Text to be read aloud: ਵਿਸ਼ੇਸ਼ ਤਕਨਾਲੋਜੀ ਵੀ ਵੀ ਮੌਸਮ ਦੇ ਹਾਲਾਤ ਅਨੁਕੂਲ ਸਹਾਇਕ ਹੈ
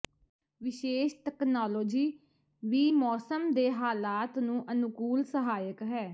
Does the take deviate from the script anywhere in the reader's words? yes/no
yes